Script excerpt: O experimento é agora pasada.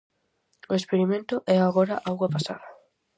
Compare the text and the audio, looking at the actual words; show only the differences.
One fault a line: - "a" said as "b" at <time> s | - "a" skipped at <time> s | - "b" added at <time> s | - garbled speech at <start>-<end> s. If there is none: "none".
- "auga" added at 2.1 s